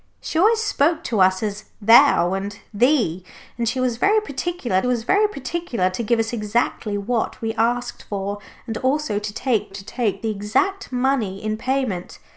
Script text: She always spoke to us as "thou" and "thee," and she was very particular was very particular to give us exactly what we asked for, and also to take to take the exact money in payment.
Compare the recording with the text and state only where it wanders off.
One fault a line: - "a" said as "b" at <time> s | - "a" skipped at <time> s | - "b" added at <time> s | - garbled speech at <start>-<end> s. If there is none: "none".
none